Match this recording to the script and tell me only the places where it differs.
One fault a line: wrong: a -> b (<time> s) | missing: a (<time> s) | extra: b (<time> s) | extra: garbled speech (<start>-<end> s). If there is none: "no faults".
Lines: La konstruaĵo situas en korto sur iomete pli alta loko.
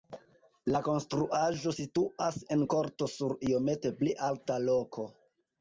no faults